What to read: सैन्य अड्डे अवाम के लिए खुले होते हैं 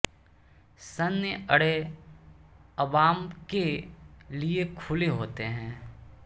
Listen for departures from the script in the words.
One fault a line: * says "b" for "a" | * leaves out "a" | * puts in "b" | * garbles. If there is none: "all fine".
all fine